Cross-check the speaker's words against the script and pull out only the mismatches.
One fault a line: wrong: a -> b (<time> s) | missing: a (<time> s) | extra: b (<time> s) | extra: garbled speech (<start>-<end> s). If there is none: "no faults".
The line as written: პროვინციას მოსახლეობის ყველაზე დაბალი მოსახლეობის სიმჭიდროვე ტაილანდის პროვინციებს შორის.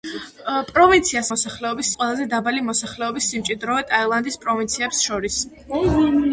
no faults